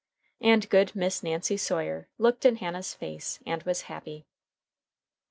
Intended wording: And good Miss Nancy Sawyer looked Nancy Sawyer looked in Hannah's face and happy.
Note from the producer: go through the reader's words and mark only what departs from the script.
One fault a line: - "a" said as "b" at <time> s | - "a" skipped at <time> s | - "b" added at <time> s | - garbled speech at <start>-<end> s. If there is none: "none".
- "Nancy Sawyer looked" skipped at 2.5 s
- "was" added at 3.6 s